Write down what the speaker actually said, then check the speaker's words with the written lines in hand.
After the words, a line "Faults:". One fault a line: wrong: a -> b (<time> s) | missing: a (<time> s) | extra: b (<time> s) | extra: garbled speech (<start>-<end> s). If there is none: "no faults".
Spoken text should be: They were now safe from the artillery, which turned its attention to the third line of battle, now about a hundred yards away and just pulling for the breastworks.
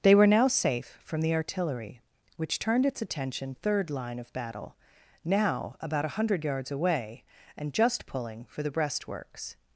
They were now safe from the artillery, which turned its attention third line of battle, now about a hundred yards away and just pulling for the breastworks.
Faults:
missing: to the (3.5 s)